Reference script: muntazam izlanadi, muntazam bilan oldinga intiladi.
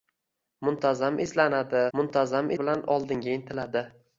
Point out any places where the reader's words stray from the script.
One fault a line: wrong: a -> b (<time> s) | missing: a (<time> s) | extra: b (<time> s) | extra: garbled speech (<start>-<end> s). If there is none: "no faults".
no faults